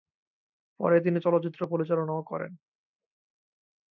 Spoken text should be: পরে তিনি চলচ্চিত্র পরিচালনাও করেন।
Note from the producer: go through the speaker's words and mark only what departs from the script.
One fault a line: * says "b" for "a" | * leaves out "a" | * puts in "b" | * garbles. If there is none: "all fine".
all fine